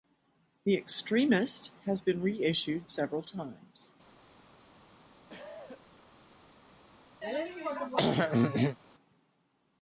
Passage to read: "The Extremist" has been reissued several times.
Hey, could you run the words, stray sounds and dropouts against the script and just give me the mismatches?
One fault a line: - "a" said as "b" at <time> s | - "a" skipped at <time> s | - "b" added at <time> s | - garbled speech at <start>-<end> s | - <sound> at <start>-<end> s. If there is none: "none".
- cough at 5.3-5.9 s
- throat clearing at 7.2-8.8 s